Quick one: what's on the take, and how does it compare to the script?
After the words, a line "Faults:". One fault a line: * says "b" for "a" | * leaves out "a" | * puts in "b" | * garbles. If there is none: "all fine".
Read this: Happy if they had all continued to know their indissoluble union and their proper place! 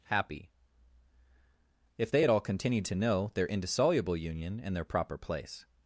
Happy if they had all continued to know their indissoluble union and their proper place!
Faults:
all fine